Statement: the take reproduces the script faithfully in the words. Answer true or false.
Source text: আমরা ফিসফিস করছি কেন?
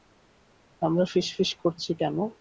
true